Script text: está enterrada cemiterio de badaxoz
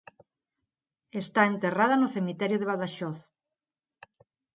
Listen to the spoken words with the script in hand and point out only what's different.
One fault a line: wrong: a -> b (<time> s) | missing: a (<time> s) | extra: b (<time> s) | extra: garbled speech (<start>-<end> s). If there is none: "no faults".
extra: no (2.0 s)